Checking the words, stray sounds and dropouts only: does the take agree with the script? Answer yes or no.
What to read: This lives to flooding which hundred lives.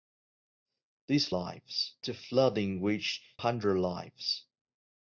yes